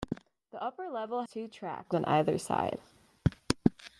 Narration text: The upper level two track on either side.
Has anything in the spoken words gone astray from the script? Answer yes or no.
no